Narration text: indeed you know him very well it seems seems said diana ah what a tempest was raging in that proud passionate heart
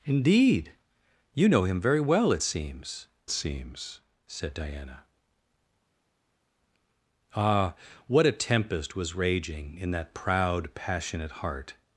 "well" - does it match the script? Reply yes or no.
yes